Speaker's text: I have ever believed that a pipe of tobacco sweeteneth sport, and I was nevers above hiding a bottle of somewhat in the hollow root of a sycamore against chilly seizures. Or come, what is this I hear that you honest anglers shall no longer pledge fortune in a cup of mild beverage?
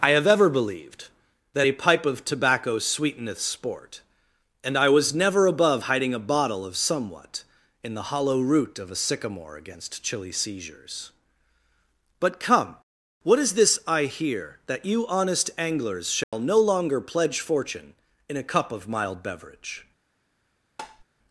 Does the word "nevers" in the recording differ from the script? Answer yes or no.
yes